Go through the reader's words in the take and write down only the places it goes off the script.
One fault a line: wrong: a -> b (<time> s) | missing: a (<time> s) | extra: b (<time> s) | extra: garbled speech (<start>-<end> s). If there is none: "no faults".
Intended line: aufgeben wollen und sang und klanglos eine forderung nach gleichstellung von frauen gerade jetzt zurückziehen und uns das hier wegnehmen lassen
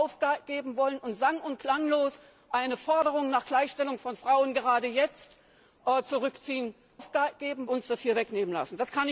wrong: und -> aufgeben (6.9 s)